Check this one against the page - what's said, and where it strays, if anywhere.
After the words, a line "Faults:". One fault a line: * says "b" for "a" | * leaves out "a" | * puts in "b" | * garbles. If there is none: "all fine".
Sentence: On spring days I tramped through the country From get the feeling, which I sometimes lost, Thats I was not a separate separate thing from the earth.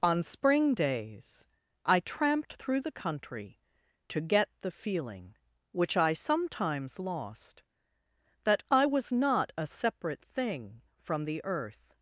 On spring days I tramped through the country To get the feeling, which I sometimes lost, That I was not a separate thing from the earth.
Faults:
* says "To" for "From"
* says "That" for "Thats"
* leaves out "separate"